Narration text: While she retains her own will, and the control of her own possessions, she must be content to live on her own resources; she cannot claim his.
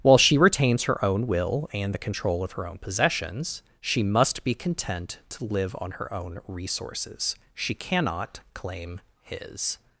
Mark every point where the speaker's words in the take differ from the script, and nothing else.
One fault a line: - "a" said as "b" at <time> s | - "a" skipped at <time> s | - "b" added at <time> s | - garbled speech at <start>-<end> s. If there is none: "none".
none